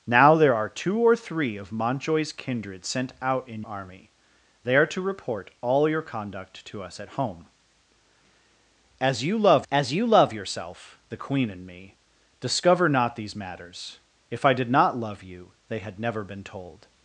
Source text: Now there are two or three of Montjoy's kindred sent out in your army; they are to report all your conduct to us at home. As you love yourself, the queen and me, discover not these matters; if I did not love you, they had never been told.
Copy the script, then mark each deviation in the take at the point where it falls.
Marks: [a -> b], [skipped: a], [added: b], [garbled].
Now there are two or three of Montjoy's kindred sent out in [skipped: your] army; they are to report all your conduct to us at home. As you love [added: as you love] yourself, the queen and me, discover not these matters; if I did not love you, they had never been told.